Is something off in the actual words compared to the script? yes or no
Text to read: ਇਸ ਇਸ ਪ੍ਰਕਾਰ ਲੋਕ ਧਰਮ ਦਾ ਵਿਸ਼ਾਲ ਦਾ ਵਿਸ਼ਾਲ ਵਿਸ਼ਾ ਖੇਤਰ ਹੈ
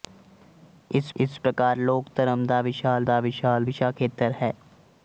no